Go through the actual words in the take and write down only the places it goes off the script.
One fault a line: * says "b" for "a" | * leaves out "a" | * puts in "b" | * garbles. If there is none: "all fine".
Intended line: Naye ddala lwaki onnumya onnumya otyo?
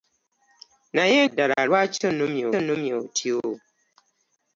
all fine